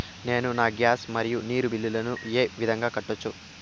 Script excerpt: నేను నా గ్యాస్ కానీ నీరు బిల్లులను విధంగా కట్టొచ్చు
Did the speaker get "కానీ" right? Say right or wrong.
wrong